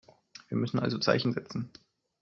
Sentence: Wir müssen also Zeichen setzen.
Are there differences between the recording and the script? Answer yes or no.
no